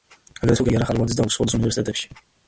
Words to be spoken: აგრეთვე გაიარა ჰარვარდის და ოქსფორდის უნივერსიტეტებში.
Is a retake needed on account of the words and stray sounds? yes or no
no